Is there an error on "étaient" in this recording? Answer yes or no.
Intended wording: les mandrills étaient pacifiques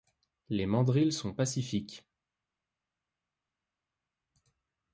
yes